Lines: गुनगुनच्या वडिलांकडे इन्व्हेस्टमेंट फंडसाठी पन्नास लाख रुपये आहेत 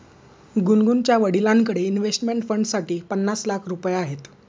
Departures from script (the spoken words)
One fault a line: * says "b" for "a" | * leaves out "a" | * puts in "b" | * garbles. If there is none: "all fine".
all fine